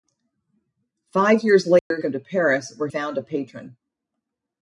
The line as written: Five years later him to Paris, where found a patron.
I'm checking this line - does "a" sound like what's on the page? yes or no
yes